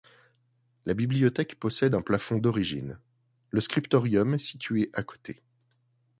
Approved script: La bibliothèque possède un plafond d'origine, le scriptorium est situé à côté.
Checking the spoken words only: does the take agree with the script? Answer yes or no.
yes